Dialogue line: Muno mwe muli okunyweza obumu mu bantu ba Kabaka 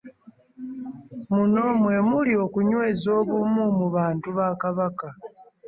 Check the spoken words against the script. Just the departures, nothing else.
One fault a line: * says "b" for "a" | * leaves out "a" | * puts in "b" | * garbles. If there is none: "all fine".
all fine